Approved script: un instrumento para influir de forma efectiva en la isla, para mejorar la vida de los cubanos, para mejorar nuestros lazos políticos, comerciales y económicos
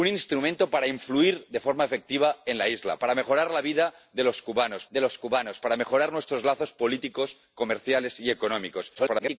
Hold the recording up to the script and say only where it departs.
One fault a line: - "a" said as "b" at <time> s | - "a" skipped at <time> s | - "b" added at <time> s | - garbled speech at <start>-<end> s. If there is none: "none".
- "de los cubanos" added at 4.9 s
- garbled speech at 8.9-9.4 s